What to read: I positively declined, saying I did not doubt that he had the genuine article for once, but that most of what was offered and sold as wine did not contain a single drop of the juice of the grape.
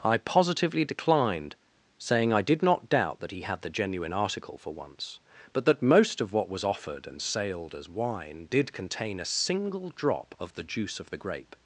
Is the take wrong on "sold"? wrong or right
wrong